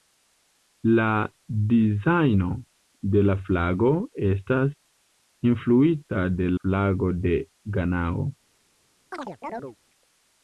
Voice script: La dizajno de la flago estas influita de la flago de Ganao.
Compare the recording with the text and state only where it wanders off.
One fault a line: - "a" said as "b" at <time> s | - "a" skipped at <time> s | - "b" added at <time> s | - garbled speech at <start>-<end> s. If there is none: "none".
- "la" skipped at 6.5 s